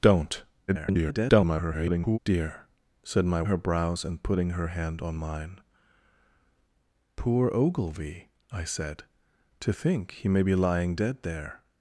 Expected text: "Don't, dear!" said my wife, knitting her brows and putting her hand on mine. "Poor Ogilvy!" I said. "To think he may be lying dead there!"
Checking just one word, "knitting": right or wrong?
wrong